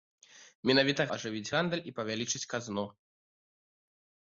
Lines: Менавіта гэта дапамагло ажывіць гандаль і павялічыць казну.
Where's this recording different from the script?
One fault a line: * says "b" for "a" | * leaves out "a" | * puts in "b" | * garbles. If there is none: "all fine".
* leaves out "гэта дапамагло"